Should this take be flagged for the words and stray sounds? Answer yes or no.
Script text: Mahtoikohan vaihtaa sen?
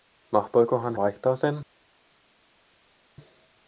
no